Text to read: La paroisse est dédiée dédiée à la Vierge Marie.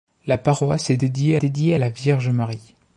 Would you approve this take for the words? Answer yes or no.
yes